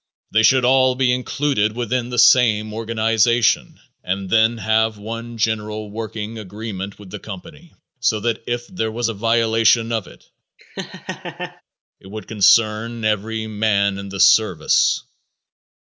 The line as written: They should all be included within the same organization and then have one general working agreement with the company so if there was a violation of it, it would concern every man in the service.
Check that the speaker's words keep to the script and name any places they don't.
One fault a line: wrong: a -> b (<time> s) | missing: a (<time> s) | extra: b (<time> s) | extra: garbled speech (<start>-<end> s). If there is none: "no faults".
extra: that (8.2 s)